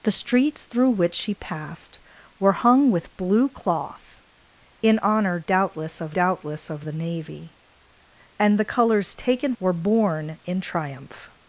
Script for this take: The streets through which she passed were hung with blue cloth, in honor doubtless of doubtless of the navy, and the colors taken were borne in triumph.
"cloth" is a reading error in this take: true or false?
false